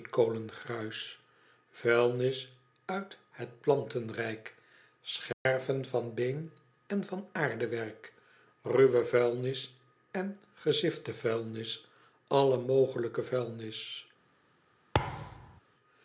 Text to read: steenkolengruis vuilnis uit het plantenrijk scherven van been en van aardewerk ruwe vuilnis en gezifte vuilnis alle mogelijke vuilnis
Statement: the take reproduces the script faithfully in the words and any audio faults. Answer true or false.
false